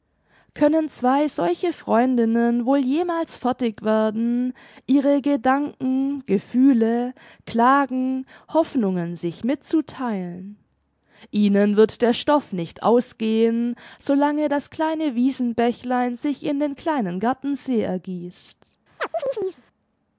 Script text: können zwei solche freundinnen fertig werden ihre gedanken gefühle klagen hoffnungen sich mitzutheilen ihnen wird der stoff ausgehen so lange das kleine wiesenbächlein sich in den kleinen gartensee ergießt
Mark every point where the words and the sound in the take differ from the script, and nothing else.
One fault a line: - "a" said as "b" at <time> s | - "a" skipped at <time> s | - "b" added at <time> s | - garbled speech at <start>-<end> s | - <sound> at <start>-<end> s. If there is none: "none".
- "wohl jemals" added at 2.6 s
- "nicht" added at 12.5 s
- chirp at 19.0-19.6 s